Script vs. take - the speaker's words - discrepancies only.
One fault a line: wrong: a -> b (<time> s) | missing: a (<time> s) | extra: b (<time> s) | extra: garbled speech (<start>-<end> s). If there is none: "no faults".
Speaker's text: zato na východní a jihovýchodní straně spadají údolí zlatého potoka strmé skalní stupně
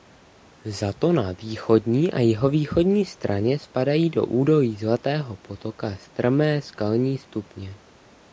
extra: do (4.1 s)